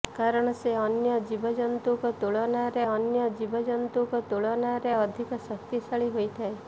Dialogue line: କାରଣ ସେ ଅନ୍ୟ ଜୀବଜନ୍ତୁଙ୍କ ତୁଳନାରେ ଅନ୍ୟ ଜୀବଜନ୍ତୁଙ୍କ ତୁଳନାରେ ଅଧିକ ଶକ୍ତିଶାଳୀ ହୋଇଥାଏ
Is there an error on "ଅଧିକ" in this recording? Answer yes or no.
no